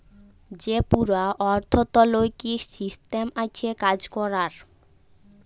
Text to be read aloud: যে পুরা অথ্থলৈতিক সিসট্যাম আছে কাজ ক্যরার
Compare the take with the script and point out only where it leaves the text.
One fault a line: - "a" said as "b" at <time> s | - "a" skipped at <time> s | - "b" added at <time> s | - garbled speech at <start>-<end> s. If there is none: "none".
none